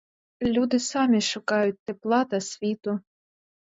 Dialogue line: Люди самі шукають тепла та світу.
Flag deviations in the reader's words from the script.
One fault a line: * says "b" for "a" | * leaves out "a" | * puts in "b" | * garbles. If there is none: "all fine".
all fine